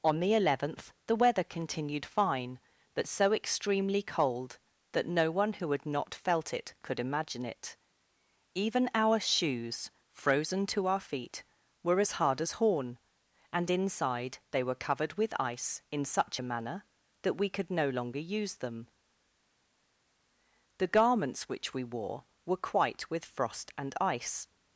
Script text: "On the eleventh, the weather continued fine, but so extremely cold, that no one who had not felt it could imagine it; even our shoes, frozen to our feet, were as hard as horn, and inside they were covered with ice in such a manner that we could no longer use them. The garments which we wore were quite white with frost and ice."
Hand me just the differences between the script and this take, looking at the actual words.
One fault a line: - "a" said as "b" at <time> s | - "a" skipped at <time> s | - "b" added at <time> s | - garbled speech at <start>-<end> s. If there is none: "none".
- "white" skipped at 23.1 s